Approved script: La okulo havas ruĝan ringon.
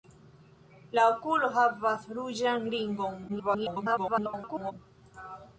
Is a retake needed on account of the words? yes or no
yes